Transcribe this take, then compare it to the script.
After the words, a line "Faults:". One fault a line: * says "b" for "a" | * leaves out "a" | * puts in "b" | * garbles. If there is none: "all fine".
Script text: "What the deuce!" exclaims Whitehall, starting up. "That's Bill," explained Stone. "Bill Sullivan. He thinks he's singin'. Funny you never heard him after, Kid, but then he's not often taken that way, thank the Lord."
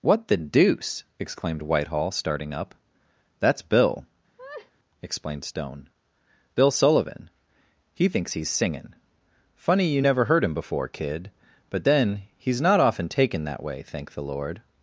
"What the deuce!" exclaimed Whitehall, starting up. "That's Bill," explained Stone. "Bill Sullivan. He thinks he's singin'. Funny you never heard him before, Kid, but then he's not often taken that way, thank the Lord."
Faults:
* says "exclaimed" for "exclaims"
* says "before" for "after"